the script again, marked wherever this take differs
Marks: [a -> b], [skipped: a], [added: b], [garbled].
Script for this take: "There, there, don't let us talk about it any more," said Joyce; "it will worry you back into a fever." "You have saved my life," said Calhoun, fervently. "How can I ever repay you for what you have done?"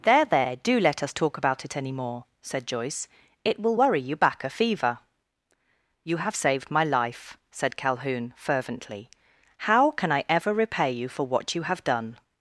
"There, there, [don't -> do] let us talk about it any more," said Joyce; "it will worry you back [skipped: into] a fever." "You have saved my life," said Calhoun, fervently. "How can I ever repay you for what you have done?"